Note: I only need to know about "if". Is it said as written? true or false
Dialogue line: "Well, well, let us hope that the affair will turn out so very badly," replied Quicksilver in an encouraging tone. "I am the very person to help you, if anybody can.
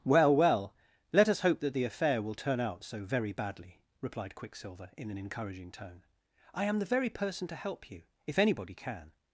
true